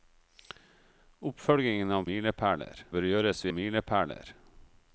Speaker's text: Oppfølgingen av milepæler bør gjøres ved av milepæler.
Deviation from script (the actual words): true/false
false